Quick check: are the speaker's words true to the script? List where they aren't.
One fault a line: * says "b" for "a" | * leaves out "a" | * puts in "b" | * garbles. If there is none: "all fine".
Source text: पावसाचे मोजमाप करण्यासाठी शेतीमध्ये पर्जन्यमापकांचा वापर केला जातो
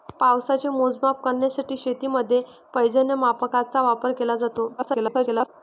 * garbles